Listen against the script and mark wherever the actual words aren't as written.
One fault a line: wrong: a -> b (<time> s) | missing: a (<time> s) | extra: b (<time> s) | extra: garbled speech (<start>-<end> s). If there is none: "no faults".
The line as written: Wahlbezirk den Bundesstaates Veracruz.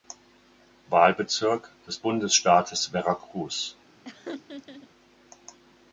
wrong: den -> des (1.9 s)